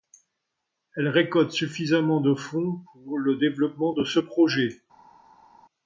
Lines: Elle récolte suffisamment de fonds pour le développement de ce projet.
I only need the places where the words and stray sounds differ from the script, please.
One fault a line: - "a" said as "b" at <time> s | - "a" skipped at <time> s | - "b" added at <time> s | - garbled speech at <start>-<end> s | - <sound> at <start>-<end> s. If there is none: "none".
none